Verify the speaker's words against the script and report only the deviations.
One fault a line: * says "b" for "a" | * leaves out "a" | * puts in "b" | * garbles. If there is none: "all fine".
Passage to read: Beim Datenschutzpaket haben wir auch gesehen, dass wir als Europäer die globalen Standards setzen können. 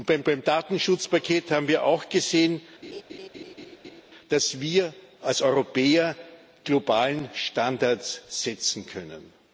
* puts in "beim"
* leaves out "die"